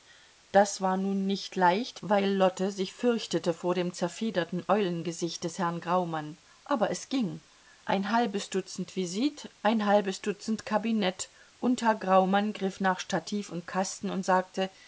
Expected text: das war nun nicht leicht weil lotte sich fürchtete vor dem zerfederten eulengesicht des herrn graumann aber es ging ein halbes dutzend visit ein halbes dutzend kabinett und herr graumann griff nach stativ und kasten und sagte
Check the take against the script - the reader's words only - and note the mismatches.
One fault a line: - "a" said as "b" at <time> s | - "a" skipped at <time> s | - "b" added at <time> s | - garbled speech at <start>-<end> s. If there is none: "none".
none